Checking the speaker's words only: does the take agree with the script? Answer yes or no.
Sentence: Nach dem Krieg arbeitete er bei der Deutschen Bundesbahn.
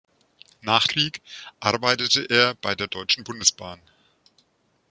no